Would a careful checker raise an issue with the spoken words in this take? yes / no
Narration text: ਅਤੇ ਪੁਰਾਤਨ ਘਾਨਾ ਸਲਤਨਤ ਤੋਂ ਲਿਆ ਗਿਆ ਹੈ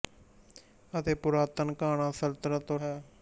yes